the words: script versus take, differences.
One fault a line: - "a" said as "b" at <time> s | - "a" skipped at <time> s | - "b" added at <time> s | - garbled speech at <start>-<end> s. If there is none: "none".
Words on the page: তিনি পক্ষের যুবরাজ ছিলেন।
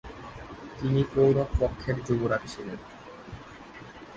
- "কৌরব" added at 1.1 s